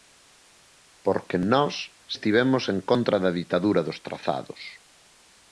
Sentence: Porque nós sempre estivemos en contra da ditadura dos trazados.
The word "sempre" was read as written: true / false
false